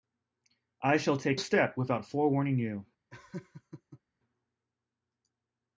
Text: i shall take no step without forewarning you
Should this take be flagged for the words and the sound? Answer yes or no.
yes